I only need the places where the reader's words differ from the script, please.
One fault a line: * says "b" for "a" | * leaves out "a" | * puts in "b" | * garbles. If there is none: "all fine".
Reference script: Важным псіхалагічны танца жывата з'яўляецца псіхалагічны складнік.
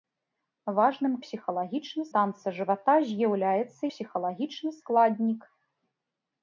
all fine